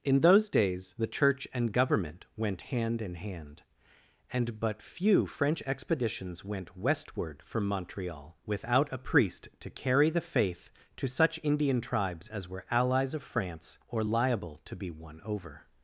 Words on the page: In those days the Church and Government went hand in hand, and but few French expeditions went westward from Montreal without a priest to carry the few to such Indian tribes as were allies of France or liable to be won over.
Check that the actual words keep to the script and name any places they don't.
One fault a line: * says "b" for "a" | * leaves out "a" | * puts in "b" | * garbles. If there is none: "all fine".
* says "faith" for "few"